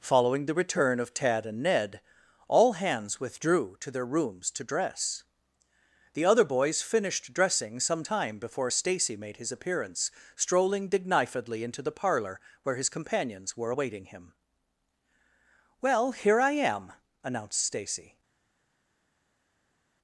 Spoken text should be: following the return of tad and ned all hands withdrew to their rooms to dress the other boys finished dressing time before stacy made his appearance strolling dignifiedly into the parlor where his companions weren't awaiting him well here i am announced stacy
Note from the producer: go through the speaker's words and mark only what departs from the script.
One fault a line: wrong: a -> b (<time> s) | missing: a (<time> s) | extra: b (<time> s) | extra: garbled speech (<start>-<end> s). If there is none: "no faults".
extra: some (7.8 s)
wrong: weren't -> were (13.6 s)